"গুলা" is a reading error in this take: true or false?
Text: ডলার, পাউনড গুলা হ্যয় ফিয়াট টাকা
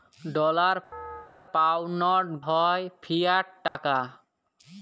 true